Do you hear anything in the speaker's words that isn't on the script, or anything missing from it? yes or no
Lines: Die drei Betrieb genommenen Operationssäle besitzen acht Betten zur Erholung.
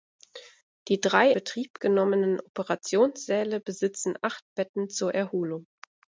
no